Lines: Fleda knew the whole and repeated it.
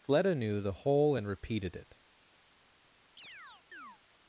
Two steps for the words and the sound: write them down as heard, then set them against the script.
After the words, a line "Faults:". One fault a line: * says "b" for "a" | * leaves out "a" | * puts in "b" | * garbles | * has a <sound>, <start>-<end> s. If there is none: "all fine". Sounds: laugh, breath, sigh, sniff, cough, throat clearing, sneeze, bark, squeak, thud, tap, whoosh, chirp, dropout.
Fleda knew the whole and repeated it.
Faults:
* has a chirp, 3.2-4.0 s